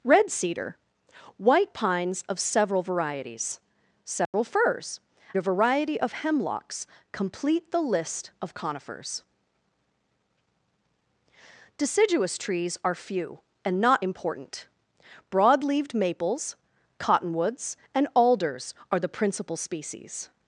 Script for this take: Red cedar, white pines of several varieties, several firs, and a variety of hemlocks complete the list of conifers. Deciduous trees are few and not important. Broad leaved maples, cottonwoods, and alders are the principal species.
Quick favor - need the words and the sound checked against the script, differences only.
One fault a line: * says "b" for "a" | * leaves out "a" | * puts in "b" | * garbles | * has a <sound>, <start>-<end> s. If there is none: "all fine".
* has a dropout, 4.3-4.3 s
* leaves out "and"